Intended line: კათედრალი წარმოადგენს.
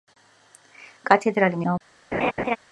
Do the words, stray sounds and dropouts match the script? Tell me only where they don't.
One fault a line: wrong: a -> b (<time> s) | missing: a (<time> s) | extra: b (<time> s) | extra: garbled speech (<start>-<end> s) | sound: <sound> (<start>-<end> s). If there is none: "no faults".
sound: laugh (2.1-2.6 s)